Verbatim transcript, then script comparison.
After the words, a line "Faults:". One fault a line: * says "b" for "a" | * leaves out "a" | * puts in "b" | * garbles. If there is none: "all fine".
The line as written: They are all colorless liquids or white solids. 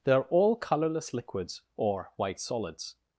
They are all colorless liquids or white solids.
Faults:
all fine